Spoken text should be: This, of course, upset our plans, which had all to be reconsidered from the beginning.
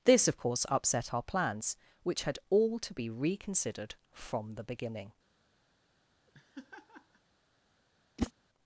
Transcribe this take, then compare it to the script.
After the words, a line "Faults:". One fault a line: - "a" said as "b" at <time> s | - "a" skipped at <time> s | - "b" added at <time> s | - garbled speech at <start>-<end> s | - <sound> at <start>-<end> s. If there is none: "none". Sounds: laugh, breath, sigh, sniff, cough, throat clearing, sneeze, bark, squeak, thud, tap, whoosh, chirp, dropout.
This, of course, upset our plans, which had all to be reconsidered from the beginning.
Faults:
- laugh at 6.3-7.2 s
- whoosh at 8.2-8.3 s